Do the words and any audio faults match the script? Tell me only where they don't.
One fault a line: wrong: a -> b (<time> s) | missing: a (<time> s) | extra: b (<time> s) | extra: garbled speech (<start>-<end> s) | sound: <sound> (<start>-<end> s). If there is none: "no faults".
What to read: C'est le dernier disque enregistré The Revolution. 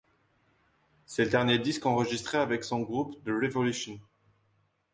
extra: avec son groupe (2.4 s)